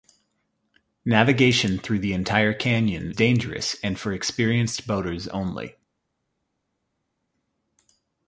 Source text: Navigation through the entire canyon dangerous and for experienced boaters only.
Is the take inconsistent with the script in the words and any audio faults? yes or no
no